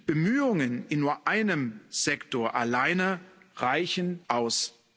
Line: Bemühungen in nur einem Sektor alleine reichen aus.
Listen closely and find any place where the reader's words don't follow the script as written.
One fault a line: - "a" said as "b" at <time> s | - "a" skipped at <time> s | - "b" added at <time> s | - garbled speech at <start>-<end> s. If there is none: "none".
none